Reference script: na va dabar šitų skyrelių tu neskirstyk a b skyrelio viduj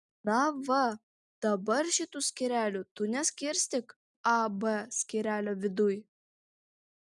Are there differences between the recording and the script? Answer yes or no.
no